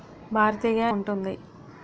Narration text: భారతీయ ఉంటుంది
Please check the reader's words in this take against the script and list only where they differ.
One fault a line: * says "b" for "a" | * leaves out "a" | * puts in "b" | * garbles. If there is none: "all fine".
all fine